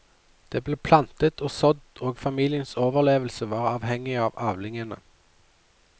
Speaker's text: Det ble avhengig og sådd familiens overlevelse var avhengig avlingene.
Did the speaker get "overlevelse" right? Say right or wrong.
right